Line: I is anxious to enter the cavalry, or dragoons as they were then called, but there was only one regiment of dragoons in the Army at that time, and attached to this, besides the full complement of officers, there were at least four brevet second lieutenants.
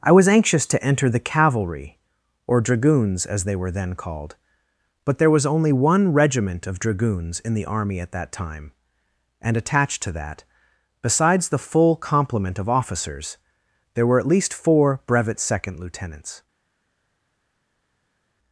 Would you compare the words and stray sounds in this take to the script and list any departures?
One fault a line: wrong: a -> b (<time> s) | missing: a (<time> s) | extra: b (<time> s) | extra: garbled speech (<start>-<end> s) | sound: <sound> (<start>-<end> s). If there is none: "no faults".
wrong: is -> was (0.1 s)
wrong: this -> that (10.1 s)